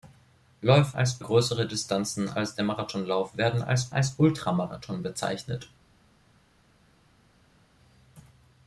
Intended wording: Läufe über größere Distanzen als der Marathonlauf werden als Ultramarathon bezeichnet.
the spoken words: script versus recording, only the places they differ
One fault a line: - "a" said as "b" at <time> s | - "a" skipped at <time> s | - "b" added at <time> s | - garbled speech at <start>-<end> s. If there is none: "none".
- "über" said as "als" at 0.9 s
- "als" added at 3.9 s